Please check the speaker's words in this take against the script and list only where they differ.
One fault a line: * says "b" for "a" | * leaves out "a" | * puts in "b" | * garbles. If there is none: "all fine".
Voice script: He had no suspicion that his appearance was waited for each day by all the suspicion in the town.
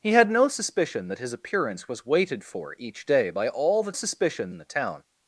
all fine